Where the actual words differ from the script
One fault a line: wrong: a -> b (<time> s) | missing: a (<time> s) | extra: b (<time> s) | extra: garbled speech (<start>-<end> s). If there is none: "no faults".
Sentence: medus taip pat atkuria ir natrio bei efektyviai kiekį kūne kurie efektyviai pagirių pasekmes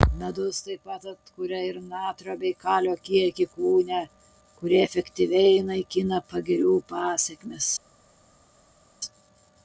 wrong: efektyviai -> kalio (2.6 s)
extra: naikina (5.7 s)